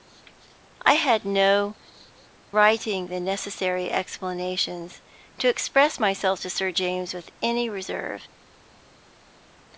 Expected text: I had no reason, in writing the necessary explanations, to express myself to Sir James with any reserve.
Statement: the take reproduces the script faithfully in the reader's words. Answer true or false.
false